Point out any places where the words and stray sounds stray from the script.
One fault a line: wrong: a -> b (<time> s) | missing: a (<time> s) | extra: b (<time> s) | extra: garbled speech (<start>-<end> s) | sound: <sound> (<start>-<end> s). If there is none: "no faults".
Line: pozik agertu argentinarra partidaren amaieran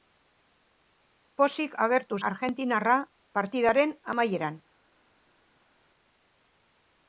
no faults